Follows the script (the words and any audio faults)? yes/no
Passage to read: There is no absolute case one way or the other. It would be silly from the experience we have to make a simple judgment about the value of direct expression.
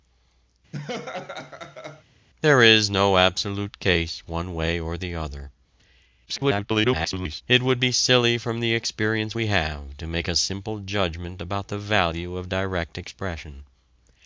no